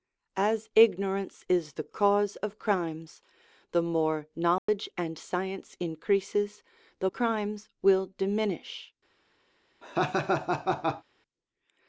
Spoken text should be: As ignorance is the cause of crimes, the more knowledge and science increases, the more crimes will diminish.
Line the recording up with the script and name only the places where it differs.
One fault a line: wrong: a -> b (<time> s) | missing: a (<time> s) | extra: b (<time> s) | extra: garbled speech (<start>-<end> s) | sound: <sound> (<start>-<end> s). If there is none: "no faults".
sound: dropout (4.6-4.7 s)
missing: more (7.1 s)
sound: laugh (9.8-11.0 s)